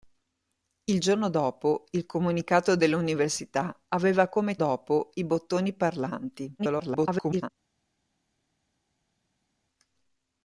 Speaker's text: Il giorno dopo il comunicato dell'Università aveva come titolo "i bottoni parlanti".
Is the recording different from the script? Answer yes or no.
yes